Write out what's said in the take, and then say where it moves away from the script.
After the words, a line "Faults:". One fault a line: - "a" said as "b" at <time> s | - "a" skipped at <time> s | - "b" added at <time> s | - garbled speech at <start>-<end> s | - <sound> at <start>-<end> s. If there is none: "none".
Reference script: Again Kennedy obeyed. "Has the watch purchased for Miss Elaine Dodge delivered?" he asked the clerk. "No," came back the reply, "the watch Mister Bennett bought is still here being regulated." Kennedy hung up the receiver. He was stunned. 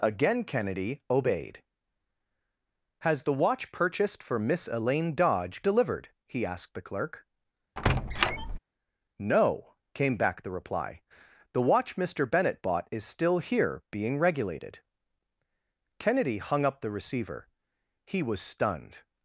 Again Kennedy obeyed. "Has the watch purchased for Miss Elaine Dodge delivered?" he asked the clerk. "No," came back the reply, "the watch Mister Bennett bought is still here being regulated." Kennedy hung up the receiver. He was stunned.
Faults:
- squeak at 7.8-8.6 s